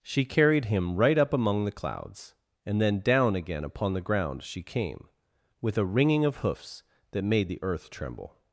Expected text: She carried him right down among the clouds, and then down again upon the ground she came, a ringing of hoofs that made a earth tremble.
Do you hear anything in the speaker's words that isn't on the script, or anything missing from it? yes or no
yes